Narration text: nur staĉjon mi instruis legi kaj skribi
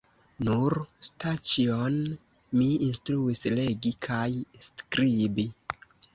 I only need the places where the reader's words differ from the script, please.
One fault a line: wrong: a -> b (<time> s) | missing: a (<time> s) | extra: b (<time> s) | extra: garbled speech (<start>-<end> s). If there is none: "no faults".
no faults